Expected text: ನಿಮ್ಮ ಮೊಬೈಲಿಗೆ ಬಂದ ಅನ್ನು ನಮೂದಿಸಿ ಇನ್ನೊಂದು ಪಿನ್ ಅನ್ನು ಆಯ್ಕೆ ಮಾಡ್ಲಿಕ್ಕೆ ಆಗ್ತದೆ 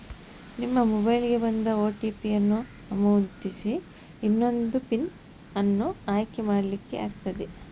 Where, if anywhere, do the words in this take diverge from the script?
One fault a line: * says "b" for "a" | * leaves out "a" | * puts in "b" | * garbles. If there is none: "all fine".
* puts in "ಓ.ಟಿ.ಪಿ"